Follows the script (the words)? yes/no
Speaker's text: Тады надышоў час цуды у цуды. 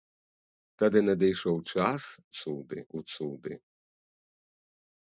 yes